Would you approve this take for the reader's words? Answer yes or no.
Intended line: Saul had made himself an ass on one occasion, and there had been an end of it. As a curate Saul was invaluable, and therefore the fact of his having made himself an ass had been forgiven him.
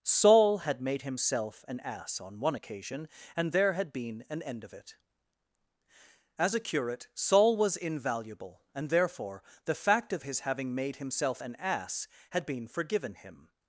yes